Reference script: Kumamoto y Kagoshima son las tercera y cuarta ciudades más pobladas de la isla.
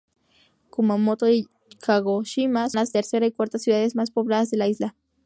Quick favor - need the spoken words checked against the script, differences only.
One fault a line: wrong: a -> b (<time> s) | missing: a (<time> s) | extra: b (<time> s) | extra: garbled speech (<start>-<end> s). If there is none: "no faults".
missing: son (2.7 s)